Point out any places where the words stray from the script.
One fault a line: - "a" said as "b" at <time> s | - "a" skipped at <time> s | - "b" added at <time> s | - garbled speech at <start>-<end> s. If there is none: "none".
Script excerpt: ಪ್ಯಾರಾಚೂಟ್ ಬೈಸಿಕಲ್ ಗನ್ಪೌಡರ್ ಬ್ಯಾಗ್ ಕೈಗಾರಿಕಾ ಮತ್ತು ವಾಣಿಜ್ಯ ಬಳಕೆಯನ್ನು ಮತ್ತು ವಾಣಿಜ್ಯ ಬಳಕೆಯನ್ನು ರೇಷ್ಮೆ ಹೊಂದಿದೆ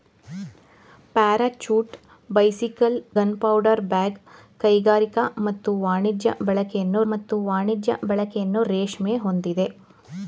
none